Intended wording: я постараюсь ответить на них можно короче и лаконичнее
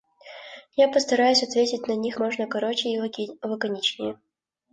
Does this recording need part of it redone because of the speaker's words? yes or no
no